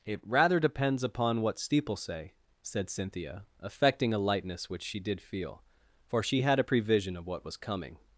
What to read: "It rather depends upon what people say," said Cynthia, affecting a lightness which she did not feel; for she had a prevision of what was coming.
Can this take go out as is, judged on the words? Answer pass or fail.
fail